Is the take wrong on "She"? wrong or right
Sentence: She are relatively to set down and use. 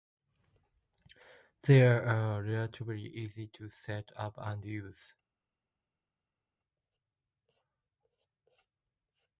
wrong